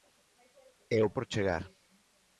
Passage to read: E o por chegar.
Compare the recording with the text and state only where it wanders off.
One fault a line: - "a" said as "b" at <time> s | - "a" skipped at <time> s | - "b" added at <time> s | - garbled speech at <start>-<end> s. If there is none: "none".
none